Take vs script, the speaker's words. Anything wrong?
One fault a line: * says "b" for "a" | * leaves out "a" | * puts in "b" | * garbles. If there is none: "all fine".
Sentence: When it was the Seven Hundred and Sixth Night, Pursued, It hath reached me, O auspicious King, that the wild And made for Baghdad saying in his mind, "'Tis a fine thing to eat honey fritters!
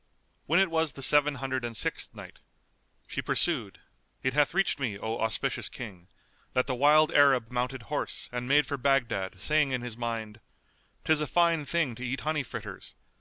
* puts in "She"
* puts in "Arab mounted horse"